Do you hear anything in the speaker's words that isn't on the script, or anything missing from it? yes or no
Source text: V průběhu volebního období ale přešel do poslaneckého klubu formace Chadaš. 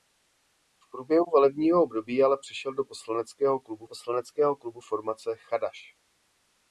yes